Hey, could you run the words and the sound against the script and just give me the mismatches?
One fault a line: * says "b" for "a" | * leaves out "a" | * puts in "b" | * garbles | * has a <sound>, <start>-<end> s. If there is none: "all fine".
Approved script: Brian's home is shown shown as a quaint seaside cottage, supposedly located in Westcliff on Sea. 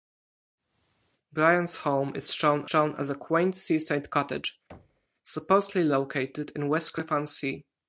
* has a thud, 4.7-5.1 s